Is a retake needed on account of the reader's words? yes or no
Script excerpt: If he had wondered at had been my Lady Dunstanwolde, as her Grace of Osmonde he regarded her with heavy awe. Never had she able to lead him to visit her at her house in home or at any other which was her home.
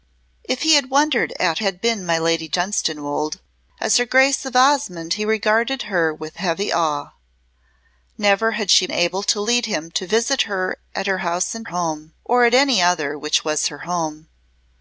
no